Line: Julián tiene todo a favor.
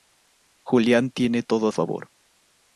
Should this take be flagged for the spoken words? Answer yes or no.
no